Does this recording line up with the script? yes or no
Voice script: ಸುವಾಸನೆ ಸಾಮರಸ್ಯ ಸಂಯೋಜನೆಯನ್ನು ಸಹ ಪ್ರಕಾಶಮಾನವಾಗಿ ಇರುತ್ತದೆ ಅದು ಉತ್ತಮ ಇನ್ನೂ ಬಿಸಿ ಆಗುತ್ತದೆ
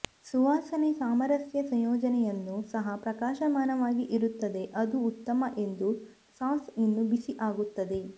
no